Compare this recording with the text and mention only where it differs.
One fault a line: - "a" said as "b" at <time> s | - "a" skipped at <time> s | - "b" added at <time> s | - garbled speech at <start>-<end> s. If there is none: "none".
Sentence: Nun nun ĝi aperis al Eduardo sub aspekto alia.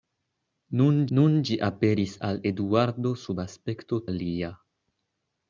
none